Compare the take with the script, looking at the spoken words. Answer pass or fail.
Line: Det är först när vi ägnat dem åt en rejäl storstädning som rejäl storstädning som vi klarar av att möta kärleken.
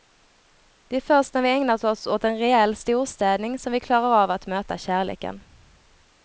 fail